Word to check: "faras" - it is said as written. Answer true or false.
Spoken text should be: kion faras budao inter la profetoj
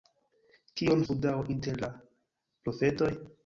false